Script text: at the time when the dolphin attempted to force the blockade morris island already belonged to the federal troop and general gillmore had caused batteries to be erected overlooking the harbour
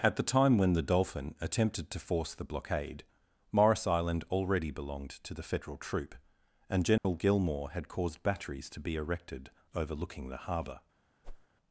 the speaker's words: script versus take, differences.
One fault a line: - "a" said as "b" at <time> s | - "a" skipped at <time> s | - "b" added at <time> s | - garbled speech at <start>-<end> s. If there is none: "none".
none